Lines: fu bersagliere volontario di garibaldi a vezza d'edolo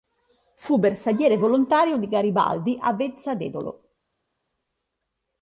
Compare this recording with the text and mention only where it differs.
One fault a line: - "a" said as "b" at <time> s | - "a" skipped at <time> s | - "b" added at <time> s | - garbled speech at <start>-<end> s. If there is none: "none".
none